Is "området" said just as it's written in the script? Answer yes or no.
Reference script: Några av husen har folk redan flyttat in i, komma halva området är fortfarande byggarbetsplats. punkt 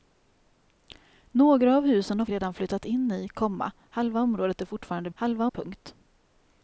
yes